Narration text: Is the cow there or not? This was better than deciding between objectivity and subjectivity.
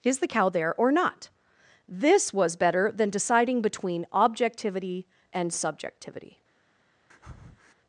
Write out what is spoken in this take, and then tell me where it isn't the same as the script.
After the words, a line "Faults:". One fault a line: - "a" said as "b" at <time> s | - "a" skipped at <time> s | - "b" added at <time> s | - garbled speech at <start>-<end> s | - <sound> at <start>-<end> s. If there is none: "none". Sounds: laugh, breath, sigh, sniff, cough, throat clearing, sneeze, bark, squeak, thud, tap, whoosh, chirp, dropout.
Is the cow there or not? This was better than deciding between objectivity and subjectivity.
Faults:
- breath at 7.1-7.7 s